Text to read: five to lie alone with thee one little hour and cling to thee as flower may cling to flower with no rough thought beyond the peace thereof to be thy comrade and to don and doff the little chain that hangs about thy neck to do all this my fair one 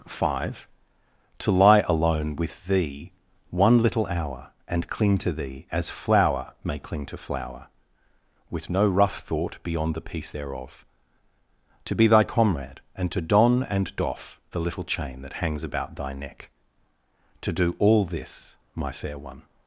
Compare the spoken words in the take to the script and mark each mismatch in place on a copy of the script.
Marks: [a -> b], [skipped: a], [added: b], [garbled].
five to lie alone with thee one little hour and cling to thee as flower may cling to flower with no rough thought beyond the peace thereof to be thy comrade and to don and doff the little chain that hangs about thy neck to do all this my fair one